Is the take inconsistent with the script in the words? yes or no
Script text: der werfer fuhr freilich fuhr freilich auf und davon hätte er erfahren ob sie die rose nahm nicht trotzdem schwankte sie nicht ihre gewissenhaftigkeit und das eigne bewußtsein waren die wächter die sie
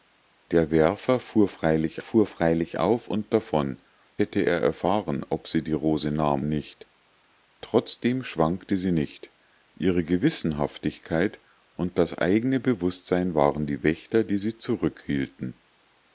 no